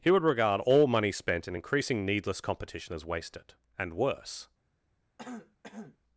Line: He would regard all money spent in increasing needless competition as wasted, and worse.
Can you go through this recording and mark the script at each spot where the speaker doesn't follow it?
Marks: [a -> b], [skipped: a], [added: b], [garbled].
He would regard all money spent in increasing needless competition as wasted, and worse.